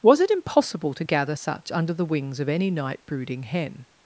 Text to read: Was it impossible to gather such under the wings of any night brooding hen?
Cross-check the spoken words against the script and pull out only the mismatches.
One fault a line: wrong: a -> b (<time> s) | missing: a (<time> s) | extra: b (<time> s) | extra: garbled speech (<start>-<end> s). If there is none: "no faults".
no faults